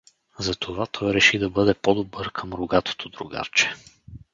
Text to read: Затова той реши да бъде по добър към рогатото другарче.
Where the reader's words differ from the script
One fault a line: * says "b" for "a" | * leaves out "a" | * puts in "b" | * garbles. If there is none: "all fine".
all fine